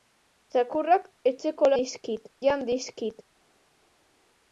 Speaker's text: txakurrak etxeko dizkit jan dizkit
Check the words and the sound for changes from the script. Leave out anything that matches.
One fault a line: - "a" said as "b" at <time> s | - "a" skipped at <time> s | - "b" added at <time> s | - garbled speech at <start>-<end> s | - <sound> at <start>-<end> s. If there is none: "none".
none